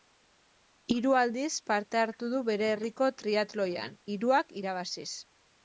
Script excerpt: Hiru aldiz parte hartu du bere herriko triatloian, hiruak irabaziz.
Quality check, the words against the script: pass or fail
pass